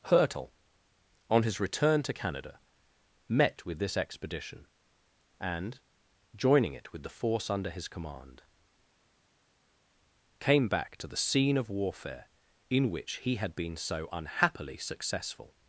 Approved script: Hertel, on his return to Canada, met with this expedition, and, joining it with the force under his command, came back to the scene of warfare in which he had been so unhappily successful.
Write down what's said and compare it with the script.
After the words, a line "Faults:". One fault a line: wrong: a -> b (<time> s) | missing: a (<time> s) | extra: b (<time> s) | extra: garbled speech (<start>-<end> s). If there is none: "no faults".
Hertel, on his return to Canada, met with this expedition, and, joining it with the force under his command, came back to the scene of warfare in which he had been so unhappily successful.
Faults:
no faults